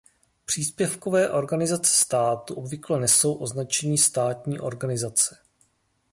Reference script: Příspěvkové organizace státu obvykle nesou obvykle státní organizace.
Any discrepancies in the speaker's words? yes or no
yes